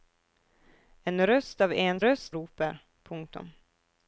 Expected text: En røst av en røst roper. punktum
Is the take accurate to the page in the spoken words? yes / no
yes